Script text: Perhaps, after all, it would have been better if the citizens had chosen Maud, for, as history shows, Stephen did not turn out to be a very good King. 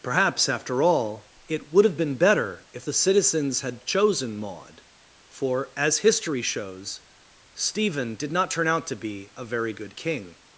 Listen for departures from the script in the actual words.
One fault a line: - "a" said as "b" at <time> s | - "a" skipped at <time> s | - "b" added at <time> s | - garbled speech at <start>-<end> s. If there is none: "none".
none